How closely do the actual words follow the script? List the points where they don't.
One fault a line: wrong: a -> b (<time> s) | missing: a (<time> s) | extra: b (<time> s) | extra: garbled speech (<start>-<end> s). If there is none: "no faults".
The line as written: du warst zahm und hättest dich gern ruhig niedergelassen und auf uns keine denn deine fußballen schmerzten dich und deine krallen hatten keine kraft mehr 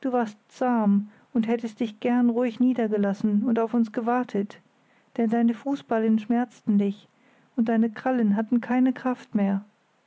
wrong: keine -> gewartet (3.9 s)